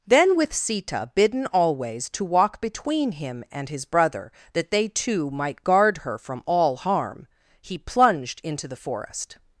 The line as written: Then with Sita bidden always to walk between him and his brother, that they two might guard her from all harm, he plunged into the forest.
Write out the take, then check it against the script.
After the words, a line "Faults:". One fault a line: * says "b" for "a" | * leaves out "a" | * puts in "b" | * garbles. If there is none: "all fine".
Then with Sita bidden always to walk between him and his brother, that they two might guard her from all harm, he plunged into the forest.
Faults:
all fine